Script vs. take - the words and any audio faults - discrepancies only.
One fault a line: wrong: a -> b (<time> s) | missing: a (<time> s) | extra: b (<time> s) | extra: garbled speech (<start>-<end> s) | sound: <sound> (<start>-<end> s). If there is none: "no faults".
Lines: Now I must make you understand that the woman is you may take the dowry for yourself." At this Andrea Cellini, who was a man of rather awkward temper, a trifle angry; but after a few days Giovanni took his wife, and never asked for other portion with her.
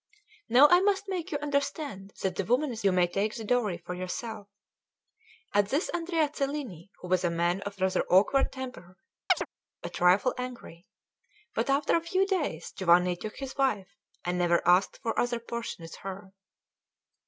sound: chirp (9.3-9.5 s)